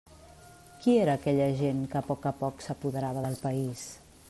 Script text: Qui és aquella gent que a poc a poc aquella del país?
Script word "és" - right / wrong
wrong